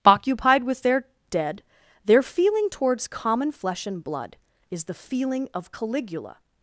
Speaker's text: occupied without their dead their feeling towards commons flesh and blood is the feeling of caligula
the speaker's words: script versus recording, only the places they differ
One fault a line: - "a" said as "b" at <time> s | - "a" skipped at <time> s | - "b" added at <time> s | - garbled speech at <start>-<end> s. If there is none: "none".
- "without" said as "with" at 0.6 s
- "commons" said as "common" at 3.1 s